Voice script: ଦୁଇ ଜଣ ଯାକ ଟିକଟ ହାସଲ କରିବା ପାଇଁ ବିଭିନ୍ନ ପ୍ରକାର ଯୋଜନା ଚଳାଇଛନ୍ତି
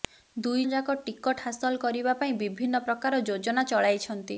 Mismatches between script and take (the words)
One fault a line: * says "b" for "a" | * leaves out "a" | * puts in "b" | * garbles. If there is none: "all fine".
* leaves out "ଜଣ"